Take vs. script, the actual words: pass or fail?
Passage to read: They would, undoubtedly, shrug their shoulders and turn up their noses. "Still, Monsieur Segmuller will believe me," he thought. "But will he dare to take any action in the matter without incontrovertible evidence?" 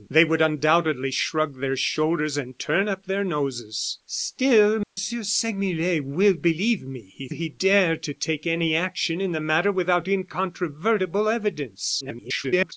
fail